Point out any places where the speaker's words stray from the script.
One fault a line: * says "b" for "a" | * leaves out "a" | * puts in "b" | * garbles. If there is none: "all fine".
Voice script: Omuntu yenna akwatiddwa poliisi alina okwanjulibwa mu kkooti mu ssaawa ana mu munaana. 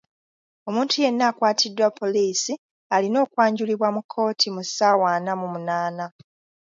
all fine